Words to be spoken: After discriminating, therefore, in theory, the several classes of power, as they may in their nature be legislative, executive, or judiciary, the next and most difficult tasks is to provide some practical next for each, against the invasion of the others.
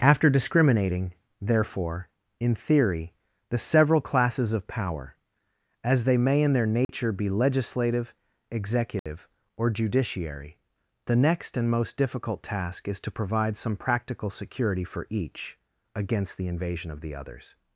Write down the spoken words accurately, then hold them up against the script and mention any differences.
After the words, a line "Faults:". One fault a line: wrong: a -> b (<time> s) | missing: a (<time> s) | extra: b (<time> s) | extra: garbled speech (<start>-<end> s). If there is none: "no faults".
After discriminating, therefore, in theory, the several classes of power, as they may in their nature be legislative, executive, or judiciary, the next and most difficult task is to provide some practical security for each, against the invasion of the others.
Faults:
wrong: tasks -> task (12.4 s)
wrong: next -> security (14.3 s)